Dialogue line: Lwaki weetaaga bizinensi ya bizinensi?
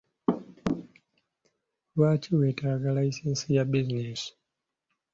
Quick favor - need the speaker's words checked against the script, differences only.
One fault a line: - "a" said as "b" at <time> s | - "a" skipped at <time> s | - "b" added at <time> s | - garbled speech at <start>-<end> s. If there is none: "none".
- "bizinensi" said as "layisinsi" at 3.0 s